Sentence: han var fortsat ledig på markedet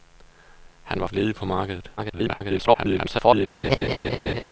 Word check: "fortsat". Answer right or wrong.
wrong